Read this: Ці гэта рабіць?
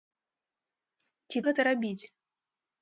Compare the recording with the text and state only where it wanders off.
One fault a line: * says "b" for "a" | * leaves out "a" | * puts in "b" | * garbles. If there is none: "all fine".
all fine